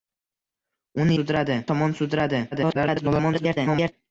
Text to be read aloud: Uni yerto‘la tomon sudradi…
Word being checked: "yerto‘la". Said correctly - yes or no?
no